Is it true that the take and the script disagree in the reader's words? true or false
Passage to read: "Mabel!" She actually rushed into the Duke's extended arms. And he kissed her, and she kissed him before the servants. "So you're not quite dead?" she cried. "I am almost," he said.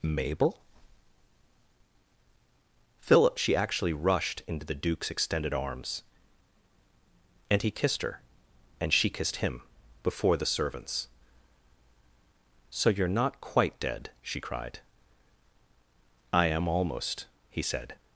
true